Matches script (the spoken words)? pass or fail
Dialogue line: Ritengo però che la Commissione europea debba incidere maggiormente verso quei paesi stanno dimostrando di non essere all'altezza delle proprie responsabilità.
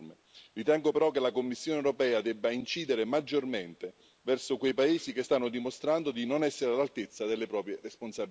fail